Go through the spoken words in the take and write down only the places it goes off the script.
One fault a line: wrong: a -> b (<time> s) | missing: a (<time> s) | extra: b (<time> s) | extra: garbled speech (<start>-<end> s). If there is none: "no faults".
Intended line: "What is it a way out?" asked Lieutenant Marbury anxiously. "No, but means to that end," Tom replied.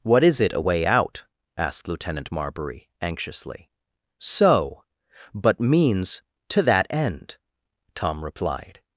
wrong: No -> So (4.2 s)